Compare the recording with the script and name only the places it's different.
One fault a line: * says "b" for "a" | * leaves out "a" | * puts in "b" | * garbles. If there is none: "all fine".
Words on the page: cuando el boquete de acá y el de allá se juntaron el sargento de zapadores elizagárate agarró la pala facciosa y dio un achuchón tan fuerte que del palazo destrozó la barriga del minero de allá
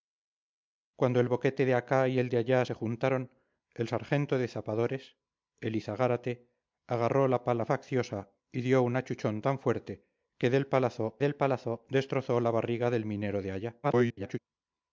* puts in "del palazo"
* garbles